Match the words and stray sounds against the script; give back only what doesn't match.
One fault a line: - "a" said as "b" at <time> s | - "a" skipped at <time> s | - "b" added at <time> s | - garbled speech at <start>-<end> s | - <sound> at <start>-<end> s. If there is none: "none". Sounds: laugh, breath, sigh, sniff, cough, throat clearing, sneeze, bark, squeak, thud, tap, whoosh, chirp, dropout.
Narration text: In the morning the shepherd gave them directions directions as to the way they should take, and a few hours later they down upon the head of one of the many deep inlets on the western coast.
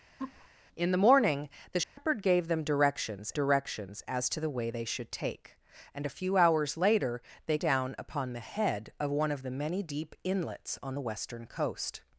- laugh at 0.2-0.5 s
- dropout at 1.8-2.0 s